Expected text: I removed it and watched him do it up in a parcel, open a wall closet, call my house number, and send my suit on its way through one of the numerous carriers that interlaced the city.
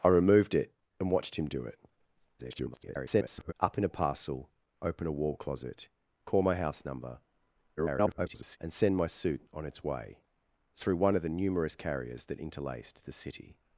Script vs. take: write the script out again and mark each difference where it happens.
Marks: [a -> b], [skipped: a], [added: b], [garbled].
I removed it and watched him do it [garbled] up in a parcel, open a wall closet, call my house number, [garbled] and send my suit on its way through one of the numerous carriers that interlaced the city.